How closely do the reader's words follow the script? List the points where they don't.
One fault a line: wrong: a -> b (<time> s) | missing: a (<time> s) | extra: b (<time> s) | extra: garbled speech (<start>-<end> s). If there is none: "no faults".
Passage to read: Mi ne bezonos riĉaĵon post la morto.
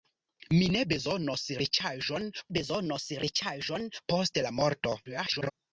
extra: bezonos riĉaĵon (2.6 s)
extra: garbled speech (5.1-5.5 s)